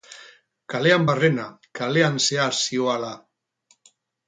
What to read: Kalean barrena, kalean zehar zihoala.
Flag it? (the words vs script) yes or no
no